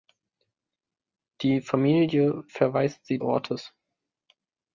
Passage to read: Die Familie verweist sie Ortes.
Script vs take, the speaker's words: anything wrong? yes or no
no